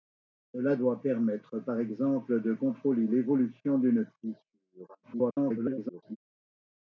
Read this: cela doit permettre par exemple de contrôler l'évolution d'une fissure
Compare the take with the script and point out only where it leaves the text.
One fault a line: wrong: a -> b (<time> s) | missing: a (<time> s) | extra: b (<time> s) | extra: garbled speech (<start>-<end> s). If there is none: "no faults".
extra: garbled speech (5.0-6.2 s)